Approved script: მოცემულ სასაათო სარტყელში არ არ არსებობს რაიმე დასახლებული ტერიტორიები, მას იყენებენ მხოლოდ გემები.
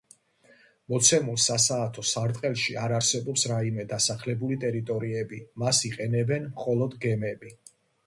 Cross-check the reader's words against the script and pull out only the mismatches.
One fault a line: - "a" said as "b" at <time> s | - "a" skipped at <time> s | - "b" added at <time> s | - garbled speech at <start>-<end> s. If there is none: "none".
- "არ" skipped at 3.0 s